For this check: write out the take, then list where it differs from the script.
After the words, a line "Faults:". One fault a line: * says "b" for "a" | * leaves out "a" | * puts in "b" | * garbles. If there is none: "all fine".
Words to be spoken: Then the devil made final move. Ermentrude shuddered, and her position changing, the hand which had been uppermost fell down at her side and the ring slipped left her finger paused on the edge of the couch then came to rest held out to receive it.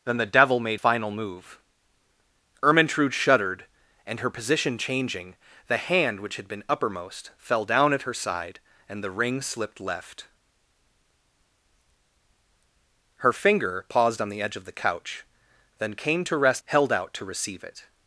Then the devil made final move. Ermentrude shuddered, and her position changing, the hand which had been uppermost fell down at her side and the ring slipped left her finger paused on the edge of the couch then came to rest held out to receive it.
Faults:
all fine